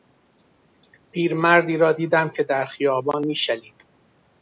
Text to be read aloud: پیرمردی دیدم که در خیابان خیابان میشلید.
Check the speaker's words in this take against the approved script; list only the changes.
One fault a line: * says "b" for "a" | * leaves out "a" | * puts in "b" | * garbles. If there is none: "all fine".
* puts in "را"
* leaves out "خیابان"